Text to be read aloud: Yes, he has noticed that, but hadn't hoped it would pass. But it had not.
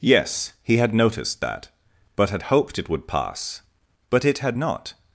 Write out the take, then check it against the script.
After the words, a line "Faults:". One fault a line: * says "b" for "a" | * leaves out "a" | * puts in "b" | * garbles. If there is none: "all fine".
Yes, he had noticed that, but had hoped it would pass. But it had not.
Faults:
* says "had" for "has"
* says "had" for "hadn't"